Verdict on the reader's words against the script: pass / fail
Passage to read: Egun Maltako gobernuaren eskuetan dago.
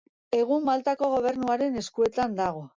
pass